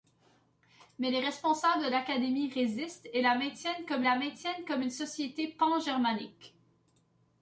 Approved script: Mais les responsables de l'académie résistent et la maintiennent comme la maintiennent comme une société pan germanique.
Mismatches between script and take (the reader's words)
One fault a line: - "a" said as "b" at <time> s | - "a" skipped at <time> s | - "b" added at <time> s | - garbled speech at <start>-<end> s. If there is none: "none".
none